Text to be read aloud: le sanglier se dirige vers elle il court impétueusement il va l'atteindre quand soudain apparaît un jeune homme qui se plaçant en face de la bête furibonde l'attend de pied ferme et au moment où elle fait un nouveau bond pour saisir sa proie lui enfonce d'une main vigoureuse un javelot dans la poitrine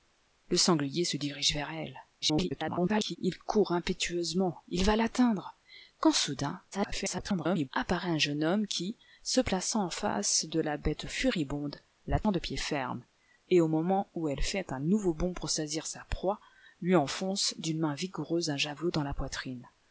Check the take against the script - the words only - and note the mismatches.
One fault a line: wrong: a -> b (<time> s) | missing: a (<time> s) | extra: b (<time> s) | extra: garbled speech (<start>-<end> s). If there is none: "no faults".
extra: garbled speech (2.2-3.2 s)
extra: garbled speech (6.7-7.7 s)